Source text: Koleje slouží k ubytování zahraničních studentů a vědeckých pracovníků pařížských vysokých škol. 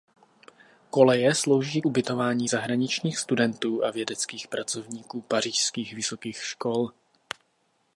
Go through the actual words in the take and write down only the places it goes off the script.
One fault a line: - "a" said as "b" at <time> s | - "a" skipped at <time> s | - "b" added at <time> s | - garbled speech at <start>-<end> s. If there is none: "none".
- "k" skipped at 1.8 s